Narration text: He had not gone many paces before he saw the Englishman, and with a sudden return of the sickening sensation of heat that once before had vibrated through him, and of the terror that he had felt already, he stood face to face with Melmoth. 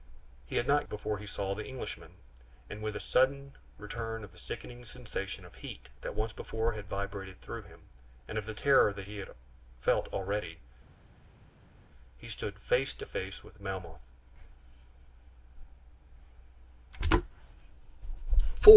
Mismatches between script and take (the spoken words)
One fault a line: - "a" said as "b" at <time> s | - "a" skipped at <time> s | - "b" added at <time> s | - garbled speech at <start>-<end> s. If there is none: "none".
- "gone many paces" skipped at 0.9 s